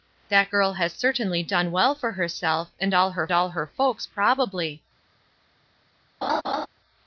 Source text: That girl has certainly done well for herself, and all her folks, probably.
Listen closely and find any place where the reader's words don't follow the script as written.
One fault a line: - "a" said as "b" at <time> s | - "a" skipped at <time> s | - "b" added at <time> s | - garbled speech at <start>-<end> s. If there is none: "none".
- "all her" added at 3.3 s